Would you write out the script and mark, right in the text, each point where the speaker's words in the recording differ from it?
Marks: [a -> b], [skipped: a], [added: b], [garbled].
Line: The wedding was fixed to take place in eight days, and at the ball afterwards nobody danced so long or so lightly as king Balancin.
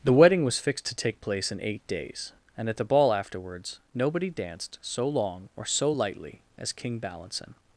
The wedding was fixed to take place in eight days, and at the ball afterwards nobody danced so long or so lightly as king Balancin.